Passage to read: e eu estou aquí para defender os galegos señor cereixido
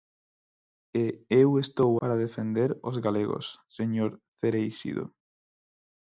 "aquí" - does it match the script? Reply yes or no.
no